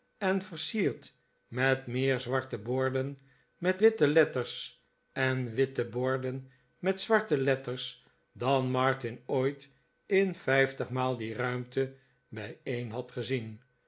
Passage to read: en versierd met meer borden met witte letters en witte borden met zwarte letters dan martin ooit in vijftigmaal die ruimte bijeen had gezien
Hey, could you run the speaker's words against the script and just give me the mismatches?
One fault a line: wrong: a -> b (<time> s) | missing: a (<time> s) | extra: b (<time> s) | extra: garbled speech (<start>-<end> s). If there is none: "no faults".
extra: zwarte (2.2 s)